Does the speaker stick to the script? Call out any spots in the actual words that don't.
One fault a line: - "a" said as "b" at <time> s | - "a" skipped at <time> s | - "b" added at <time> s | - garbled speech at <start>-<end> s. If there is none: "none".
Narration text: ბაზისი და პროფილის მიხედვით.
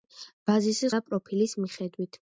none